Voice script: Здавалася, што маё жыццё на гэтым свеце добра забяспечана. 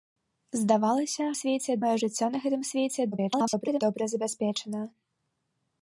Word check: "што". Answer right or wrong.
wrong